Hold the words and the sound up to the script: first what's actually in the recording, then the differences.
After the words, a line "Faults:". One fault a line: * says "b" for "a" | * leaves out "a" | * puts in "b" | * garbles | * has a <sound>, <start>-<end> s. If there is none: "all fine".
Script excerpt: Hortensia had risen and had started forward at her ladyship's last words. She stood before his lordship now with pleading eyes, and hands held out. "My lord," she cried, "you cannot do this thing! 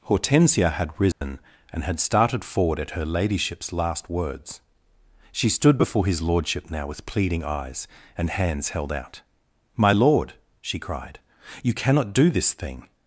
Hortensia had risen and had started forward at her ladyship's last words. She stood before his lordship now with pleading eyes, and hands held out. "My lord," she cried, "you cannot do this thing!
Faults:
* has a dropout, 1.1-1.2 s